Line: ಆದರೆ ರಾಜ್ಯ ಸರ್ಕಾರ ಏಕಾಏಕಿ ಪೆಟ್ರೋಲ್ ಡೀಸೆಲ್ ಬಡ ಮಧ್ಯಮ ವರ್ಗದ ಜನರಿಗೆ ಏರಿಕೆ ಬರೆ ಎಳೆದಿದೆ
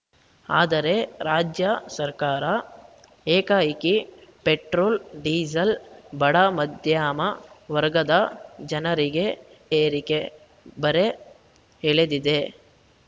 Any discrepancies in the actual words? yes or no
no